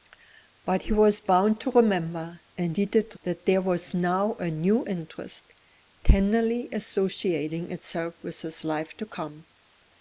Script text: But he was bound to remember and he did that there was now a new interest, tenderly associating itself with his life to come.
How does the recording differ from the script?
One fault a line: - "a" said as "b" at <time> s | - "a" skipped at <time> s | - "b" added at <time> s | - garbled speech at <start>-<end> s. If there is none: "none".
none